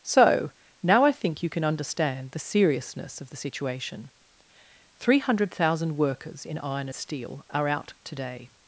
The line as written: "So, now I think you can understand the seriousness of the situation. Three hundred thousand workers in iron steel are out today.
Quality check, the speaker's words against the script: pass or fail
pass